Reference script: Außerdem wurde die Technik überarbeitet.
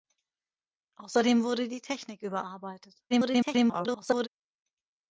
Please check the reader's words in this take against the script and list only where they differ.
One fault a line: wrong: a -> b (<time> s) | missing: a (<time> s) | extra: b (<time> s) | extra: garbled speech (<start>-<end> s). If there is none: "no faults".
extra: garbled speech (3.1-4.3 s)